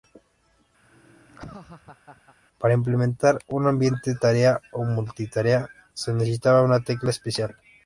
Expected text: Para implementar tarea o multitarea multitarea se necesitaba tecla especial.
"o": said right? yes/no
yes